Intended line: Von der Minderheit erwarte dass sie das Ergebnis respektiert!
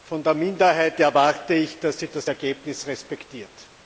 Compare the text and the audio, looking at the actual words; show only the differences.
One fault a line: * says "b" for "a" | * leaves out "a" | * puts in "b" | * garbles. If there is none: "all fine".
* puts in "ich"